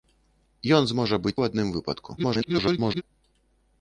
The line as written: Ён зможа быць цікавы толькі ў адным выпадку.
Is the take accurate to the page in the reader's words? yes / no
no